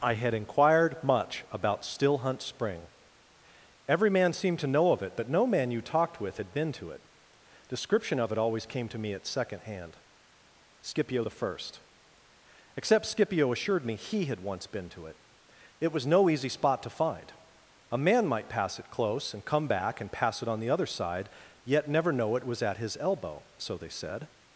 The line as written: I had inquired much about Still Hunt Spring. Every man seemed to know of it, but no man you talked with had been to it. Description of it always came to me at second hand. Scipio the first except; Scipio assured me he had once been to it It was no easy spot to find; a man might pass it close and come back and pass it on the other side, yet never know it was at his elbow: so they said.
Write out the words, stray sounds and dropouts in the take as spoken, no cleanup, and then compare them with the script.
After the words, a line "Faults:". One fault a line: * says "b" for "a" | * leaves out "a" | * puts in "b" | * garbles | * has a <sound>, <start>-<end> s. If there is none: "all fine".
I had inquired much about Still Hunt Spring. Every man seemed to know of it, but no man you talked with had been to it. Description of it always came to me at second hand. Scipio the first except; Scipio assured me he had once been to it It was no easy spot to find; a man might pass it close and come back and pass it on the other side, yet never know it was at his elbow: so they said.
Faults:
all fine